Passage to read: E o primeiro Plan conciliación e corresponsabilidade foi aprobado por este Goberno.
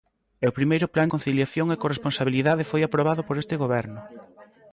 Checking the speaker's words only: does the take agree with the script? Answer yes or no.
yes